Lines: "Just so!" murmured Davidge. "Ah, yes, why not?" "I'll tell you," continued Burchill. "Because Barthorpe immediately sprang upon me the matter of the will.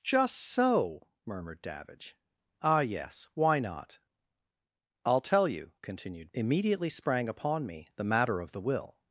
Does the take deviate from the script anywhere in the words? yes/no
yes